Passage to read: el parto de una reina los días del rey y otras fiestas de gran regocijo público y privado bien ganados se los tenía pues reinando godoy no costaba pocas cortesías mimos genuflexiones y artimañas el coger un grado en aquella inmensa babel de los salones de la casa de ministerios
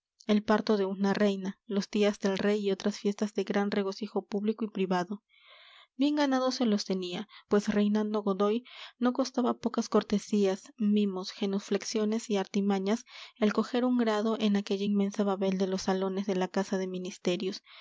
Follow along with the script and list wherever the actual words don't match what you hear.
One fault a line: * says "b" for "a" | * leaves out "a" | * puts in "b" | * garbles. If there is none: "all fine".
all fine